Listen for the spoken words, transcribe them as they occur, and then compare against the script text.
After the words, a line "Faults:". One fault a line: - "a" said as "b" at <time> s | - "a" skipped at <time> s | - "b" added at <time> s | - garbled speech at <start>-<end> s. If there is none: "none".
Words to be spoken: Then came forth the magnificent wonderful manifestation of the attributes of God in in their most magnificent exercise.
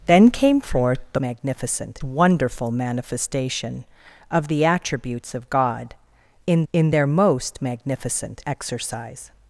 Then came forth the magnificent wonderful manifestation of the attributes of God in in their most magnificent exercise.
Faults:
none